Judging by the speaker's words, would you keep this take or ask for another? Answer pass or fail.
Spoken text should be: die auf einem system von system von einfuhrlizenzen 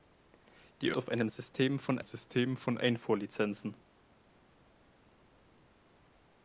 pass